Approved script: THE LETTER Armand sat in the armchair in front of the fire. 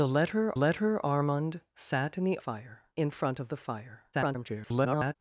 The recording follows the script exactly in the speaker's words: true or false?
false